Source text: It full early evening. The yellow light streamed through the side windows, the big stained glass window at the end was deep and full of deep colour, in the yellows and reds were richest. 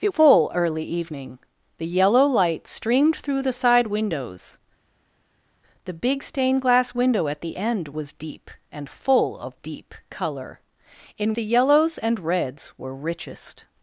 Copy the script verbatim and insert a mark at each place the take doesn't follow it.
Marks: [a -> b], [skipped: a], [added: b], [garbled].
It full early evening. The yellow light streamed through the side windows, the big stained glass window at the end was deep and full of deep colour, in the yellows and reds were richest.